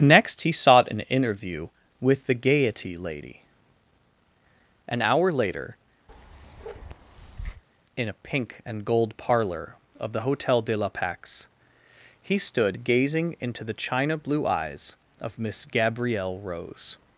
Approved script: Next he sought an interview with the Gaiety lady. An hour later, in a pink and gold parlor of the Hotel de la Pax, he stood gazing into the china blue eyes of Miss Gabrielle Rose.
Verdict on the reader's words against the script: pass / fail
pass